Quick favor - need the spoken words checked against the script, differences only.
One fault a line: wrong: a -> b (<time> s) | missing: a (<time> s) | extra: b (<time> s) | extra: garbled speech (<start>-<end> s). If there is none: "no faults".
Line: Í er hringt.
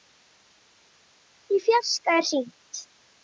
extra: fjarska (1.7 s)